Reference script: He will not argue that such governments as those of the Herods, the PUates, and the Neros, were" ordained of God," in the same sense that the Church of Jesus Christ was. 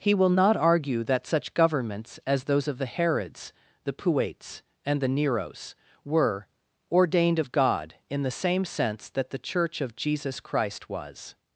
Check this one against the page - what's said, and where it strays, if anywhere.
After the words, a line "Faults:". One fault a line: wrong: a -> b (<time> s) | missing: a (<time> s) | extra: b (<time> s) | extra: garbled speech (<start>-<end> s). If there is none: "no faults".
He will not argue that such governments as those of the Herods, the PUates, and the Neros, were" ordained of God," in the same sense that the Church of Jesus Christ was.
Faults:
no faults